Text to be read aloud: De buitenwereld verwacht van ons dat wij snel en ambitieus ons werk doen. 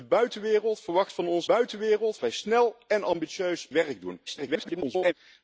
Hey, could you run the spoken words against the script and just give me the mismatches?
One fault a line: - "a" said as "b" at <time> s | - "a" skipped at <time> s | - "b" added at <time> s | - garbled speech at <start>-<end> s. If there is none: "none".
- "dat" said as "buitenwereld" at 1.4 s
- "ons" skipped at 3.7 s
- garbled speech at 4.3-5.1 s